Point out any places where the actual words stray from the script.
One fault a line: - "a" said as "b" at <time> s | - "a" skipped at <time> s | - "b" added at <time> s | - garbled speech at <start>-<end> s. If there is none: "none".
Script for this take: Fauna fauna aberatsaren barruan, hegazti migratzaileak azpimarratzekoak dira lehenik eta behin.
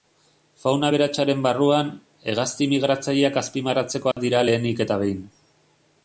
- "fauna" skipped at 0.9 s